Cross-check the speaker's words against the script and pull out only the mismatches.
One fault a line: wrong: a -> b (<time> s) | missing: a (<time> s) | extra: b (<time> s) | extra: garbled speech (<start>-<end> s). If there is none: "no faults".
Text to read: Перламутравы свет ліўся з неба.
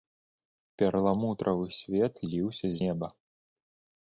missing: з (2.7 s)